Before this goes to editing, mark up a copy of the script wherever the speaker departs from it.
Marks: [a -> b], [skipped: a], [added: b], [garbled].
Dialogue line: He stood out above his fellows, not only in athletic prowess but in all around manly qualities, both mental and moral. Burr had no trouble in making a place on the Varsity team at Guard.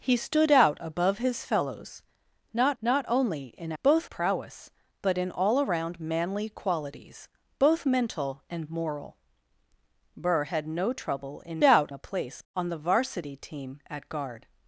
He stood out above his fellows, not [added: not] only in [athletic -> both] prowess but in all around manly qualities, both mental and moral. Burr had no trouble in [making -> out] a place on the Varsity team at Guard.